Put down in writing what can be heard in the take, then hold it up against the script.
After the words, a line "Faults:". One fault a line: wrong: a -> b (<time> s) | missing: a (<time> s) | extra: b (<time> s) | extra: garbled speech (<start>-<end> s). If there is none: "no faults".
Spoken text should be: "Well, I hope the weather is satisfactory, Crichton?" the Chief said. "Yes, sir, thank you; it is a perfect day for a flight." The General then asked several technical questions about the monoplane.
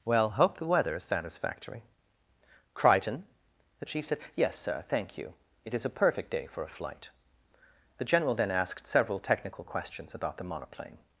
"Well, hope the weather is satisfactory, Crichton?" the Chief said. "Yes, sir, thank you; it is a perfect day for a flight." The General then asked several technical questions about the monoplane.
Faults:
missing: I (0.3 s)